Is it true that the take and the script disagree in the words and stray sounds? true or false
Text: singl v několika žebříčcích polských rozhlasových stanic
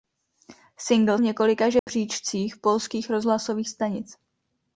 true